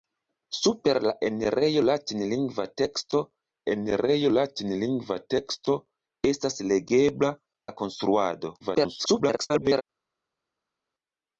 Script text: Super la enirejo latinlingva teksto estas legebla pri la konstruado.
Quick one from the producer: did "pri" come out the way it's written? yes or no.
no